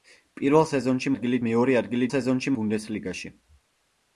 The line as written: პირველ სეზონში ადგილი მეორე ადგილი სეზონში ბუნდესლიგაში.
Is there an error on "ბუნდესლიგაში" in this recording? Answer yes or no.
no